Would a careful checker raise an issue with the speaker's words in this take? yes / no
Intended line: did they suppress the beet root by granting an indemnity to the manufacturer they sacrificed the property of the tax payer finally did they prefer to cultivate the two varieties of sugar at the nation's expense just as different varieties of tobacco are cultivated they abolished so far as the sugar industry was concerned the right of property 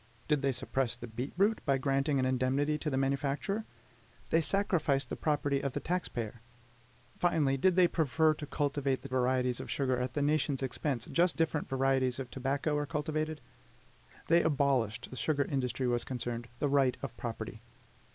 yes